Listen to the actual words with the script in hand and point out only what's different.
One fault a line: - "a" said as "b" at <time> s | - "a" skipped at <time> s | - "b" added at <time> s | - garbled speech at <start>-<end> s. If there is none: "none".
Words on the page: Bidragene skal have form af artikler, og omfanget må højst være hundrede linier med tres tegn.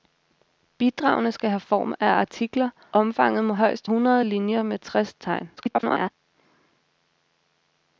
- "og" skipped at 2.7 s
- "være" skipped at 3.9 s
- garbled speech at 5.6-6.1 s